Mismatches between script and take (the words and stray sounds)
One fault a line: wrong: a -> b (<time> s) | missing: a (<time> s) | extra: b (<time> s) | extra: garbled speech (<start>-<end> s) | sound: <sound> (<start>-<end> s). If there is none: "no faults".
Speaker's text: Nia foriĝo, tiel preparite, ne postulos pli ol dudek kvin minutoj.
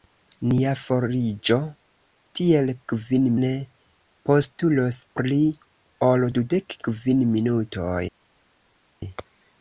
wrong: preparite -> kvin (2.9 s)